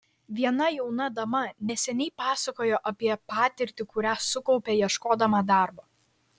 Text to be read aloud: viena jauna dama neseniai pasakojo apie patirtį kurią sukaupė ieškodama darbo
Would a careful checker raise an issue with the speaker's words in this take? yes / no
no